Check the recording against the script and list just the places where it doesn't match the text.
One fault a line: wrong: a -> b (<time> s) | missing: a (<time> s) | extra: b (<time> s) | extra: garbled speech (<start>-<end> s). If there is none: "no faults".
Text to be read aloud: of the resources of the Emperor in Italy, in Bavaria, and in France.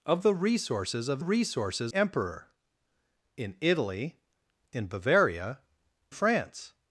wrong: the -> resources (1.2 s)
missing: and in (5.6 s)